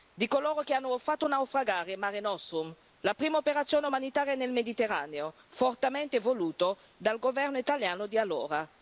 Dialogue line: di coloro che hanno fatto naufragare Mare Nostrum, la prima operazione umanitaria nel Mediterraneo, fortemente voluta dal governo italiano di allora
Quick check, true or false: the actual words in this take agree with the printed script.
true